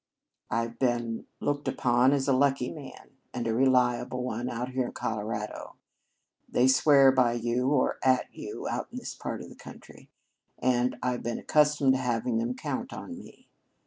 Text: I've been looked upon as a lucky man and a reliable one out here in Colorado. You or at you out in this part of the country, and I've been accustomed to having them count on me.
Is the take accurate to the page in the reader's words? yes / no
no